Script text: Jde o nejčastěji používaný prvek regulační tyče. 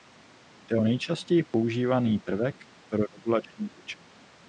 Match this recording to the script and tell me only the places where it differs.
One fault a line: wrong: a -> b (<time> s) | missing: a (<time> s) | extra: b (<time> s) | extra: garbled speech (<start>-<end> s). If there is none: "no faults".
extra: pro (2.9 s)